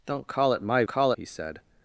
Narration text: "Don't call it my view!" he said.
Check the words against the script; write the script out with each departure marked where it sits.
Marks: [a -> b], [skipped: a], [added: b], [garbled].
"Don't call it my [view!" -> call] he said.